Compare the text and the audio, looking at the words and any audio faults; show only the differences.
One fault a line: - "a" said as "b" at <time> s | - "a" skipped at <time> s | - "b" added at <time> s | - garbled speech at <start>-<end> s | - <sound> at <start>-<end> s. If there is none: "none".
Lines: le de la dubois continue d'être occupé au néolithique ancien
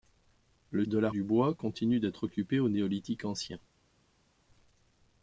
none